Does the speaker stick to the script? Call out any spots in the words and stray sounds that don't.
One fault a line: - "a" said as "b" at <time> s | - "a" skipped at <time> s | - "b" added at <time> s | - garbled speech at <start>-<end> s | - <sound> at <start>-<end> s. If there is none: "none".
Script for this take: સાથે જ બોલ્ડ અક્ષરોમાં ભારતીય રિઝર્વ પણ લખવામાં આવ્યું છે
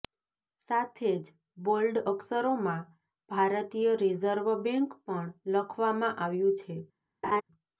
- "બેંક" added at 4.6 s
- laugh at 7.2-7.4 s